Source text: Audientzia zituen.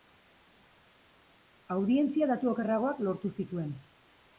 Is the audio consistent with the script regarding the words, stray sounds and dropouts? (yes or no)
no